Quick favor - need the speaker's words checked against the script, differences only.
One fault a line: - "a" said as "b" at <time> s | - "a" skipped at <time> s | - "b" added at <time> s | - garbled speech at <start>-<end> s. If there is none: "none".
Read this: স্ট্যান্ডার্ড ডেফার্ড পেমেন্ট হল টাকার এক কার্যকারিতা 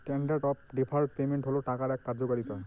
- "অফ" added at 0.4 s